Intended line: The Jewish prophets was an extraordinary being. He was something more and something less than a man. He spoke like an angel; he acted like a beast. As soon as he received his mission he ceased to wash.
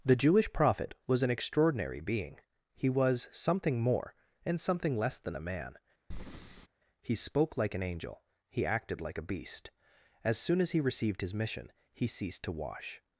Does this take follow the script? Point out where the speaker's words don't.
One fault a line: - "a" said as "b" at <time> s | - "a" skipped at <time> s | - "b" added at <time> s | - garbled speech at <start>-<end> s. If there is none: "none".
- "prophets" said as "prophet" at 0.5 s